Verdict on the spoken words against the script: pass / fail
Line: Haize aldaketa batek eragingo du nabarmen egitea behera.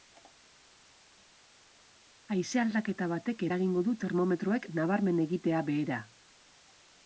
fail